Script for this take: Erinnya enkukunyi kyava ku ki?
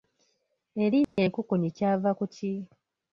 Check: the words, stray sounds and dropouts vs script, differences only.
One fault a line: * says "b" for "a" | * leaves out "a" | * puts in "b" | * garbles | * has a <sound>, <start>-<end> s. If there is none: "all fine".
* has a dropout, 1.0-1.2 s